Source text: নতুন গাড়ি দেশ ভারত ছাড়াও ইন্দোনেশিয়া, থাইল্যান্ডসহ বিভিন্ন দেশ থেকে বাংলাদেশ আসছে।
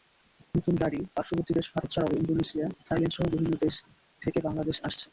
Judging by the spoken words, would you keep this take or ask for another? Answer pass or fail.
fail